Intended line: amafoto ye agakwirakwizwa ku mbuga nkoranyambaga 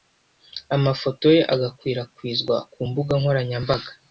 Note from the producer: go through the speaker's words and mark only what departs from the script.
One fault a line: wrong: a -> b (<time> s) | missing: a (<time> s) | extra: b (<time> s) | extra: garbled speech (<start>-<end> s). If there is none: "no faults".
no faults